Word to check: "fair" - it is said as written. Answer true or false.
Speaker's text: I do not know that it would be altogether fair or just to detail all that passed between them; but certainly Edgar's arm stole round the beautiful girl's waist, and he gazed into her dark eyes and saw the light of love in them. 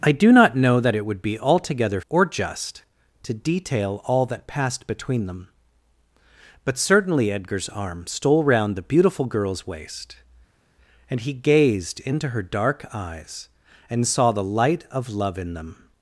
false